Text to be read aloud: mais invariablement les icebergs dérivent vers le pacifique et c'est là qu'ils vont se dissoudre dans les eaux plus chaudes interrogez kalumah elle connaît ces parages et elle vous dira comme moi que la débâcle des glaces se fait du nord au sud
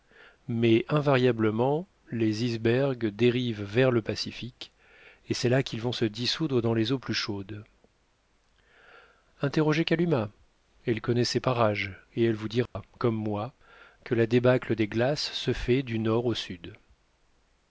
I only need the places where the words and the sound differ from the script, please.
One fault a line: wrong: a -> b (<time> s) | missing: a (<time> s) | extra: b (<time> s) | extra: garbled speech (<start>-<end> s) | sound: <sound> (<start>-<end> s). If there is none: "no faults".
sound: dropout (12.7-12.8 s)